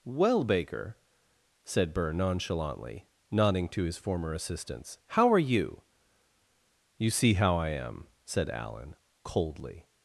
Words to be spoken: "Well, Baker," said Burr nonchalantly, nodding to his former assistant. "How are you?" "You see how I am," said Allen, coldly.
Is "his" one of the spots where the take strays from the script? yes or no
no